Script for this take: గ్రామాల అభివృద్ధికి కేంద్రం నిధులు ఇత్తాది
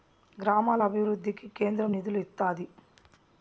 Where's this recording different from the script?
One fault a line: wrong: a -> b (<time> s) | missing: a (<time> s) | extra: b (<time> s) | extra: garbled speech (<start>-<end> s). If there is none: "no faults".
no faults